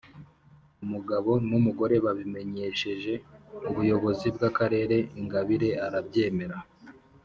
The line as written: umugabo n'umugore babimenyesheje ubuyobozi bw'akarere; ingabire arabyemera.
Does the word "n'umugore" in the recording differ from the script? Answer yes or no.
no